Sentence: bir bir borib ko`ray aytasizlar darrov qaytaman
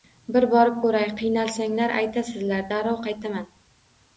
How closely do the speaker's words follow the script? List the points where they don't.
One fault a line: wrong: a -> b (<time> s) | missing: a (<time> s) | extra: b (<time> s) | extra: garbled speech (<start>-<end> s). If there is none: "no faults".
missing: bir (0.5 s)
extra: qiynalsanglar (1.2 s)